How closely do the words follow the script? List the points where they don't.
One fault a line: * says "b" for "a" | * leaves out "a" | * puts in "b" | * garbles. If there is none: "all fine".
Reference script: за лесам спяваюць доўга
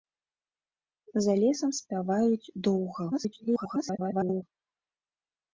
* garbles